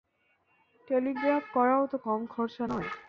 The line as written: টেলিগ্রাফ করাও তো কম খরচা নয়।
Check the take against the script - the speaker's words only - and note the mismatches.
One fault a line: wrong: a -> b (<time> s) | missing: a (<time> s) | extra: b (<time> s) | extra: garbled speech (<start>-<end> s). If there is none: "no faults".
no faults